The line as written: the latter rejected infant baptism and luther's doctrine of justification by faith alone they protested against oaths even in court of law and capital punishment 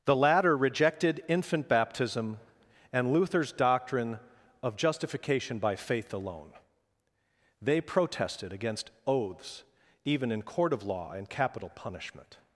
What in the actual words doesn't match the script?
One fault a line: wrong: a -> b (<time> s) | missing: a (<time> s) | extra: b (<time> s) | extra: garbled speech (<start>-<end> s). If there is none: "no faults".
no faults